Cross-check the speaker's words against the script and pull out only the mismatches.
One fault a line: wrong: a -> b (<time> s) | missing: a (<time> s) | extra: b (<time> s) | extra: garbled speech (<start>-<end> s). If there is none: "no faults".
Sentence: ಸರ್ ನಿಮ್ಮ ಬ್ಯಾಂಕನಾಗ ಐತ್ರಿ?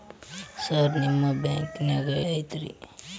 no faults